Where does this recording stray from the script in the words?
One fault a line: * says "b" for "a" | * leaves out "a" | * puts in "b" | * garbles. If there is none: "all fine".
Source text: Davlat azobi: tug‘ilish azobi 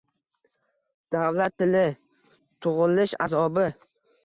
* says "tili" for "azobi"